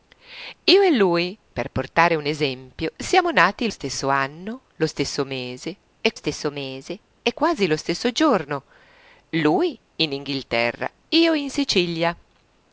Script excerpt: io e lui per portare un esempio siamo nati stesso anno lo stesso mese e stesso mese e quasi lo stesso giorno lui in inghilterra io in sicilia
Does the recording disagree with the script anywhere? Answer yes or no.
no